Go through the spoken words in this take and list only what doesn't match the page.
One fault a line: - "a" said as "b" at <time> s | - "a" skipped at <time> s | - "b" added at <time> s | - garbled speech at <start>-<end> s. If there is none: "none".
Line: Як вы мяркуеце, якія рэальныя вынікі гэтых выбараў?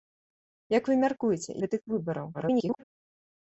- "якія рэальныя вынікі" skipped at 1.5 s
- garbled speech at 2.3-2.8 s